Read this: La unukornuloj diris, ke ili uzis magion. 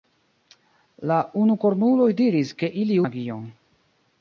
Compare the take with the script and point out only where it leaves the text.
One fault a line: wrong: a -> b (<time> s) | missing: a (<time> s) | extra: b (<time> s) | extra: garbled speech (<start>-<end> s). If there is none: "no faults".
missing: uzis (3.0 s)